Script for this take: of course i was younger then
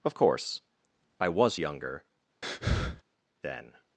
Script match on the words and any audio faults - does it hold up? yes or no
no